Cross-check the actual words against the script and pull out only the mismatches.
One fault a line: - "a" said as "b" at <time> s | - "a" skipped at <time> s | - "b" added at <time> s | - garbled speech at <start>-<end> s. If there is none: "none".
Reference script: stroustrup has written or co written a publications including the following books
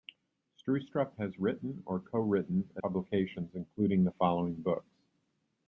none